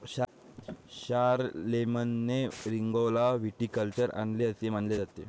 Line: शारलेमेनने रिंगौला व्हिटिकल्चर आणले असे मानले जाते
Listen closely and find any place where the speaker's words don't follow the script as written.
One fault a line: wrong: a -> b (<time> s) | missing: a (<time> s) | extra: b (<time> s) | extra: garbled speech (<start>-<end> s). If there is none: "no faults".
no faults